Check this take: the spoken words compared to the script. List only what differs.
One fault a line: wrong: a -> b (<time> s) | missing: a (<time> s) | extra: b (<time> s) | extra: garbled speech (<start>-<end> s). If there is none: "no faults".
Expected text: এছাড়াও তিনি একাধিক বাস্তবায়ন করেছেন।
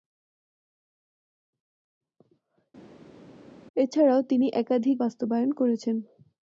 no faults